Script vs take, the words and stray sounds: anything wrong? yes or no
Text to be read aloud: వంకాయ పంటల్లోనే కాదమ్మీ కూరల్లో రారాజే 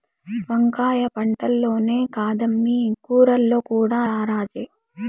yes